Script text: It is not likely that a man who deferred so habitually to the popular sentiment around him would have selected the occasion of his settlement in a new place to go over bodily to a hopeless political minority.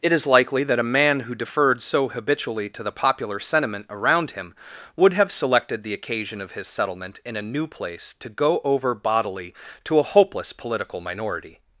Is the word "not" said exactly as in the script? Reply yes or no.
no